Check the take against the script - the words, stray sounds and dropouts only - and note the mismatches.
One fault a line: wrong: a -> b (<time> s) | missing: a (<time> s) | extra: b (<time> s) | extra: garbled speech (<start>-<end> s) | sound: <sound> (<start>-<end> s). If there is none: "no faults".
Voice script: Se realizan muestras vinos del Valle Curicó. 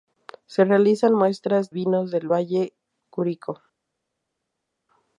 no faults